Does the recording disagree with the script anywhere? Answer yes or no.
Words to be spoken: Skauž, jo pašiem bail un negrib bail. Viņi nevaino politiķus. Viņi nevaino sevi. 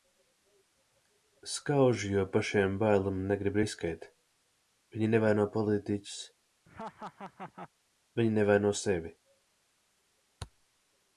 yes